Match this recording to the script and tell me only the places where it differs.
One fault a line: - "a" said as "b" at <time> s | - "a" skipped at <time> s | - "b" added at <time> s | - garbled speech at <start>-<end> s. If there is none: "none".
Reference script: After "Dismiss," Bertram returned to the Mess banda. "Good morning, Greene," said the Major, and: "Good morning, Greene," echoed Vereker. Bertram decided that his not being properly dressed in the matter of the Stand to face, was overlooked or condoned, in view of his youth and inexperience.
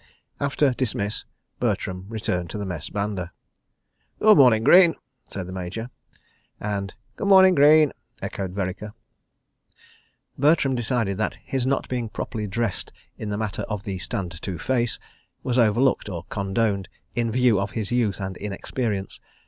none